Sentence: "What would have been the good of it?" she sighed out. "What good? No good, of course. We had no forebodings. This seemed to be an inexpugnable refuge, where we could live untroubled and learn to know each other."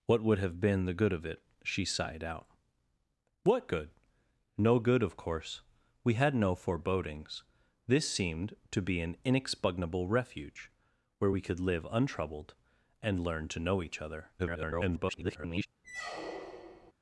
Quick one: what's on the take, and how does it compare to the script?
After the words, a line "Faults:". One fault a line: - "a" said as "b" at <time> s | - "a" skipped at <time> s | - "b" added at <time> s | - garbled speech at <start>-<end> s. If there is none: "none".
"What would have been the good of it?" she sighed out. "What good? No good, of course. We had no forebodings. This seemed to be an inexpugnable refuge, where we could live untroubled and learn to know each other." [garbled]
Faults:
- garbled speech at 14.4-15.7 s